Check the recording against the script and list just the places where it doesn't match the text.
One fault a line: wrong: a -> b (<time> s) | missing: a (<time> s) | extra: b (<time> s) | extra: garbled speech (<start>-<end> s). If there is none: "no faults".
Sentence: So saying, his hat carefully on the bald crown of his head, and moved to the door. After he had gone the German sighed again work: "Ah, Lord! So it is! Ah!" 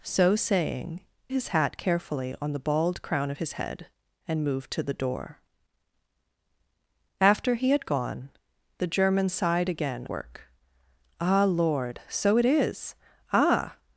no faults